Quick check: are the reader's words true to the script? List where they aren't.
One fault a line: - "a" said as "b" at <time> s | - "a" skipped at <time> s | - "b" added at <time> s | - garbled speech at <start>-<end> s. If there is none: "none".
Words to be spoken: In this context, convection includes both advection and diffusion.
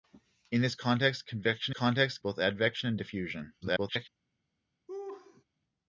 - "includes" said as "context" at 1.7 s
- garbled speech at 3.6-4.1 s